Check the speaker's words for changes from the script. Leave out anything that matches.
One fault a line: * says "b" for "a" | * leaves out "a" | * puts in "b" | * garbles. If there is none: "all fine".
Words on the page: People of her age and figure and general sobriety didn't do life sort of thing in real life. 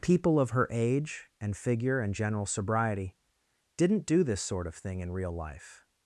* says "this" for "life"